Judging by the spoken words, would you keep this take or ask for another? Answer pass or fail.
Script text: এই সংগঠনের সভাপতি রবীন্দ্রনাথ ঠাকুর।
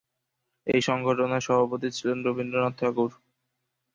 fail